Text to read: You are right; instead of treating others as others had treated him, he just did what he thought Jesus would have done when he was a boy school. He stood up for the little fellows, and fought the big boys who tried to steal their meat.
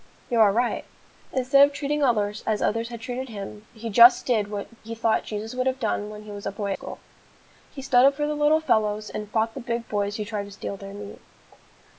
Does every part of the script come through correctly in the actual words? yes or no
yes